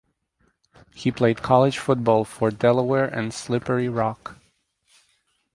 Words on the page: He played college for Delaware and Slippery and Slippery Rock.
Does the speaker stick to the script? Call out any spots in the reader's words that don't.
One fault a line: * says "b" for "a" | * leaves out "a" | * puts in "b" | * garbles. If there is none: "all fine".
* puts in "football"
* leaves out "and Slippery"